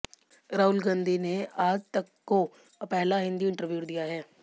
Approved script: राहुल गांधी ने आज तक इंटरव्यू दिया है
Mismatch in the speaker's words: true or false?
true